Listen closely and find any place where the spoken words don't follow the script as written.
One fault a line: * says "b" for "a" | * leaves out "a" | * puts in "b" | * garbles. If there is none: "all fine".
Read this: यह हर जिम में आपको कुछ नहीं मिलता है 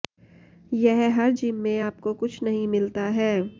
all fine